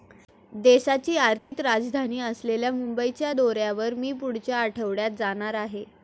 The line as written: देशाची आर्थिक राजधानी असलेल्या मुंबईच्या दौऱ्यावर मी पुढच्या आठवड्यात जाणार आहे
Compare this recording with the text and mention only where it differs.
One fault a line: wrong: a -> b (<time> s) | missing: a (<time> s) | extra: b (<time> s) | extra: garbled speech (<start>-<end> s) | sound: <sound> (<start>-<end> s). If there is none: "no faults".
sound: dropout (1.4-1.5 s)